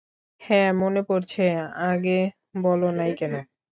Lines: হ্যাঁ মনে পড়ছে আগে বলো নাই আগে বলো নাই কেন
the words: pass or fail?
fail